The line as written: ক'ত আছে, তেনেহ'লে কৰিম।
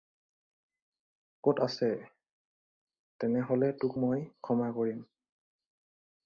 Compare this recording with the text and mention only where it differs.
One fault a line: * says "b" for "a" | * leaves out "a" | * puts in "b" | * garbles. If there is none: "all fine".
* puts in "তোক মই ক্ষমা"